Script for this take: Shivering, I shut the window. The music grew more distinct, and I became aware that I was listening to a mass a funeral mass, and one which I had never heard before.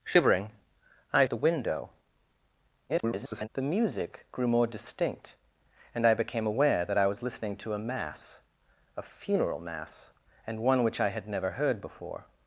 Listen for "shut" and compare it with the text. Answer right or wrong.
wrong